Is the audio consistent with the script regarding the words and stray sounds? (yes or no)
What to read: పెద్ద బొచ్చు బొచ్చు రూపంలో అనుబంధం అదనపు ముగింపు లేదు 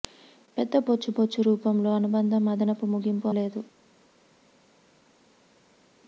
yes